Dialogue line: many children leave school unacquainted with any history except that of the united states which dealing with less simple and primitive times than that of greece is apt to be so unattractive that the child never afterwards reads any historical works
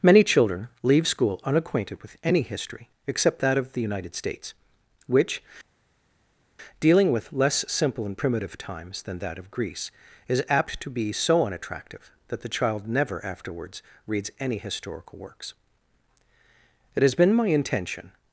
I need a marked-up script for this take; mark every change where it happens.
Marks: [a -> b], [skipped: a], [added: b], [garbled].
many children leave school unacquainted with any history except that of the united states which dealing with less simple and primitive times than that of greece is apt to be so unattractive that the child never afterwards reads any historical works [added: it has been my intention]